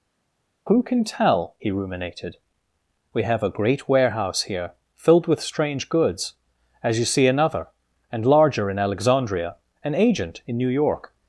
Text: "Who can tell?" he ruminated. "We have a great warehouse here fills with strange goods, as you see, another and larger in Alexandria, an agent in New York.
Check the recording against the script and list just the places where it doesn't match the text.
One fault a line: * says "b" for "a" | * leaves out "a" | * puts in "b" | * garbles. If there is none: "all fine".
* says "filled" for "fills"